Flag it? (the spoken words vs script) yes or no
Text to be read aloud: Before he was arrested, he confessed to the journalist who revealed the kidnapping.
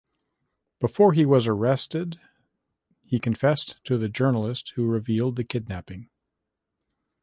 no